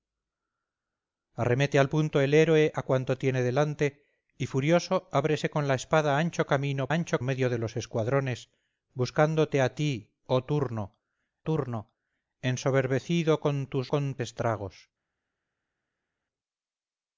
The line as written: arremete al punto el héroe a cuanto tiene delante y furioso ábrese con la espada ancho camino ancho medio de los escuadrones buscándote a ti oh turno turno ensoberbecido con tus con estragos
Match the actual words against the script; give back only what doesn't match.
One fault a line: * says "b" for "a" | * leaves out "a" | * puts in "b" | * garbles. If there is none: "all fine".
all fine